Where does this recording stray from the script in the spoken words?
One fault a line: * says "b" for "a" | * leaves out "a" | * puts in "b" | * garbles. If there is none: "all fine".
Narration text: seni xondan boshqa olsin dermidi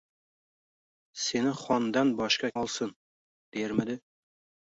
all fine